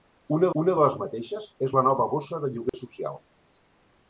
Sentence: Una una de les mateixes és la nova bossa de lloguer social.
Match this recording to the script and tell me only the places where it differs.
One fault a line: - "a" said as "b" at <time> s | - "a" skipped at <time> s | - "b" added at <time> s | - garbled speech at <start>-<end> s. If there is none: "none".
none